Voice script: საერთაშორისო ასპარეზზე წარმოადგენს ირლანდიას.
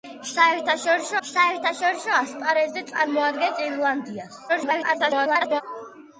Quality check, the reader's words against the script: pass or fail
fail